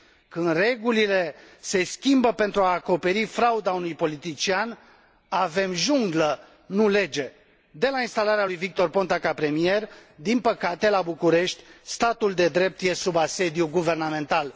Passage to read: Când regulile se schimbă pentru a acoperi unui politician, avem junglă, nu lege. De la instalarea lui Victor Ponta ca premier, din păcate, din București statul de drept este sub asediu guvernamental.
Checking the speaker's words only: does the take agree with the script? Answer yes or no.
no